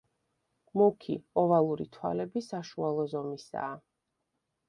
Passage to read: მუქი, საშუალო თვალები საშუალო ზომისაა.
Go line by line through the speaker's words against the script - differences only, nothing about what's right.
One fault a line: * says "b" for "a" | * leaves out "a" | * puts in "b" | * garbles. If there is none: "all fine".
* says "ოვალური" for "საშუალო"